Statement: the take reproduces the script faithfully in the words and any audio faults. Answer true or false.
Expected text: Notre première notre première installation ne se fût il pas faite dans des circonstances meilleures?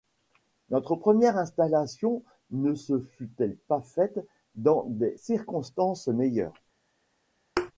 false